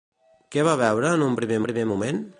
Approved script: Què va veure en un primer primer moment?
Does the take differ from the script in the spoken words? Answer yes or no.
no